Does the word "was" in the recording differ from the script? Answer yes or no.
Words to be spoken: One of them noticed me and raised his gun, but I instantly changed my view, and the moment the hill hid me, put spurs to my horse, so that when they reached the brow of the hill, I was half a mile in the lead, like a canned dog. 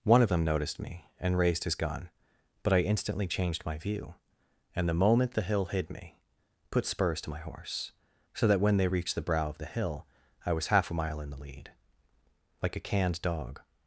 no